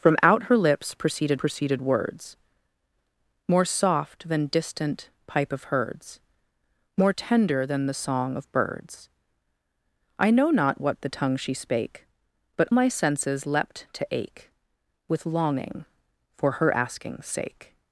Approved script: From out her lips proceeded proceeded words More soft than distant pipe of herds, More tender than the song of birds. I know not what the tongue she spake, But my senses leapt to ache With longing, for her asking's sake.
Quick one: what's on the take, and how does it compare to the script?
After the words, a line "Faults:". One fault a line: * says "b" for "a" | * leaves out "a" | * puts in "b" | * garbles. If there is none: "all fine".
From out her lips proceeded proceeded words More soft than distant pipe of herds, More tender than the song of birds. I know not what the tongue she spake, But my senses leapt to ache With longing, for her asking's sake.
Faults:
all fine